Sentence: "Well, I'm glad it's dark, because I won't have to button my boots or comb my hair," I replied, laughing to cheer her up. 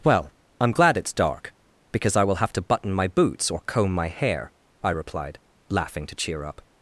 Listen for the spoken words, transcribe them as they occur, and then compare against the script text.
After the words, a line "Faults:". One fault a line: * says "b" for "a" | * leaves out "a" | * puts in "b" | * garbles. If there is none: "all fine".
"Well, I'm glad it's dark, because I will have to button my boots or comb my hair," I replied, laughing to cheer up.
Faults:
* says "will" for "won't"
* leaves out "her"